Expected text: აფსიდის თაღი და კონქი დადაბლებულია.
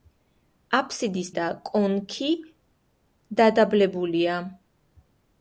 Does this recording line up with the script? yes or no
no